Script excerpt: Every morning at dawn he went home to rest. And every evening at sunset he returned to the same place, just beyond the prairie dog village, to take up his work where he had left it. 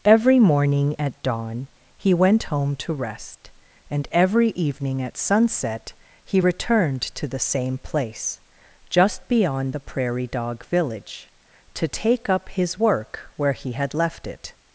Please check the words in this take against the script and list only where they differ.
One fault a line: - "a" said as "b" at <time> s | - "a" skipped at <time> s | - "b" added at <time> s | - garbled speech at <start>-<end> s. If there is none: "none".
none